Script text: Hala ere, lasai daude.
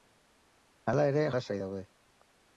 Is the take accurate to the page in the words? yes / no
yes